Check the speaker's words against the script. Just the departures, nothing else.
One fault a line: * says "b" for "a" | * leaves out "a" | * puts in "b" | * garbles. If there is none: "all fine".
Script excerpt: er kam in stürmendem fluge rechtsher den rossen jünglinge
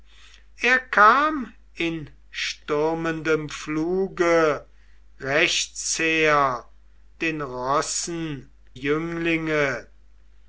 all fine